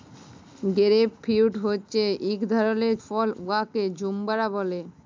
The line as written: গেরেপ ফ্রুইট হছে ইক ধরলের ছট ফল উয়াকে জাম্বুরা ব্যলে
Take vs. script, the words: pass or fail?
fail